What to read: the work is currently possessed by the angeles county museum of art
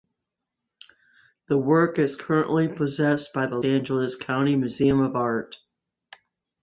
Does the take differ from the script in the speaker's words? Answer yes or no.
no